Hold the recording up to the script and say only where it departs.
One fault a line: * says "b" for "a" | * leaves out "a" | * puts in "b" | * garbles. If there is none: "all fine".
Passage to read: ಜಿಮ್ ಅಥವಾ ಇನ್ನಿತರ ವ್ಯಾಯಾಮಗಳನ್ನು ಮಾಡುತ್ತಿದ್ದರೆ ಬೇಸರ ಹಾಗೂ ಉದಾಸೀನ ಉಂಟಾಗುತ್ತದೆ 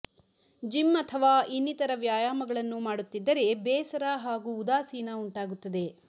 all fine